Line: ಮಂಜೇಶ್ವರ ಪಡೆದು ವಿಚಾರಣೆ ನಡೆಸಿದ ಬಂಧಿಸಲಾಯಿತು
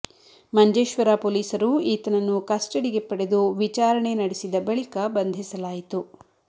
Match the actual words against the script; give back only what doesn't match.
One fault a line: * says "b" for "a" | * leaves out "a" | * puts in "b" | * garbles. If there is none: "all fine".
* puts in "ಪೊಲೀಸರು ಈತನನ್ನು ಕಸ್ಟಡಿಗೆ"
* puts in "ಬಳಿಕ"